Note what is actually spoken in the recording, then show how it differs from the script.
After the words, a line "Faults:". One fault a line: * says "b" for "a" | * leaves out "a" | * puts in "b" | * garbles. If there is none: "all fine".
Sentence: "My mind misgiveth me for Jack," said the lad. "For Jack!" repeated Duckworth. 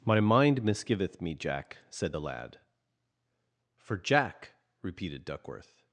"My mind misgiveth me Jack," said the lad. "For Jack!" repeated Duckworth.
Faults:
* leaves out "for"